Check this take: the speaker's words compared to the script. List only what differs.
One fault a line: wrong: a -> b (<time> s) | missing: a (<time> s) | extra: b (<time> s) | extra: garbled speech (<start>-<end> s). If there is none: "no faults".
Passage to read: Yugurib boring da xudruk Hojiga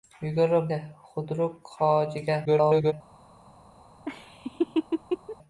missing: boring (0.7 s)
extra: garbled speech (2.5-2.9 s)